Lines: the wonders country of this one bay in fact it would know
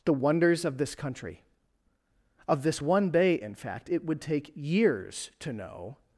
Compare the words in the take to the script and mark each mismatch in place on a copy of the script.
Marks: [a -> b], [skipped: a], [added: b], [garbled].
the wonders [added: of this] country of this one bay in fact it would [added: take years to] know